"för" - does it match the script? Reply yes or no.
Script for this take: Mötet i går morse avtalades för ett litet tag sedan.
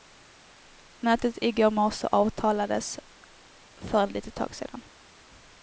yes